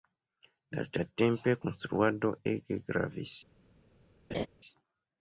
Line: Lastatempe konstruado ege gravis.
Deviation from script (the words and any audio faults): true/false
true